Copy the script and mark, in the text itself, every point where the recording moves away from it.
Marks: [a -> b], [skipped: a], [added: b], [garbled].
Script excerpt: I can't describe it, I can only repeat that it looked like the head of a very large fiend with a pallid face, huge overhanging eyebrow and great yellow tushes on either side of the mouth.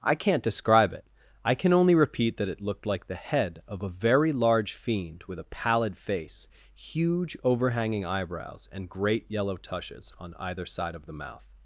I can't describe it, I can only repeat that it looked like the head of a very large fiend with a pallid face, huge overhanging [eyebrow -> eyebrows] and great yellow tushes on either side of the mouth.